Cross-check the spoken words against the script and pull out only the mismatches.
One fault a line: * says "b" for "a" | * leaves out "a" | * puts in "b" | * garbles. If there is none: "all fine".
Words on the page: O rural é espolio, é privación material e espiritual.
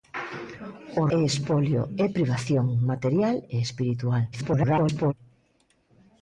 * leaves out "rural"
* garbles